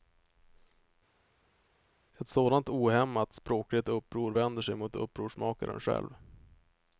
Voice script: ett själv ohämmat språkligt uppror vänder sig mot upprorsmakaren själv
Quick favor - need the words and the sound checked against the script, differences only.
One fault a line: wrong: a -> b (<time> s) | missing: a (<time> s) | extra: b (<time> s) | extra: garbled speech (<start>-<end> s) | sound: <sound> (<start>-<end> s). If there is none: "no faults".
wrong: själv -> sådant (2.3 s)